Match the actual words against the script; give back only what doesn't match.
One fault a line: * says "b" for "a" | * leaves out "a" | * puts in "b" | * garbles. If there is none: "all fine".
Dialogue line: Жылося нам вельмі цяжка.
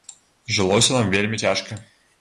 all fine